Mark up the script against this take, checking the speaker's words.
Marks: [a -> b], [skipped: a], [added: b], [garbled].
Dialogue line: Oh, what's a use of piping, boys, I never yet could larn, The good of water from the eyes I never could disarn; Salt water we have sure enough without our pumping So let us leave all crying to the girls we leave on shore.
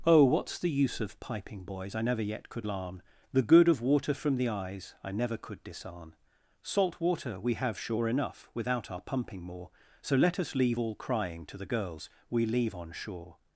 Oh, what's [a -> the] use of piping, boys, I never yet could larn, The good of water from the eyes I never could disarn; Salt water we have sure enough without our pumping [added: more] So let us leave all crying to the girls we leave on shore.